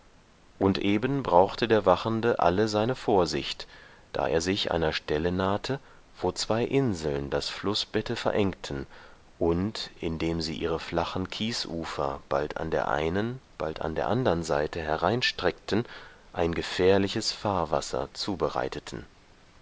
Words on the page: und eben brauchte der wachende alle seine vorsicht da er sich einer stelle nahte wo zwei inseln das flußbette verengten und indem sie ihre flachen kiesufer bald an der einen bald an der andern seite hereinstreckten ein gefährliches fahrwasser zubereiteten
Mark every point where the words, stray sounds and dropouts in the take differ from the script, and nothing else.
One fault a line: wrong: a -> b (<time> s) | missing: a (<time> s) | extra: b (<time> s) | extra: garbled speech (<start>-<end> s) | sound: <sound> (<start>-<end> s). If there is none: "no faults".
no faults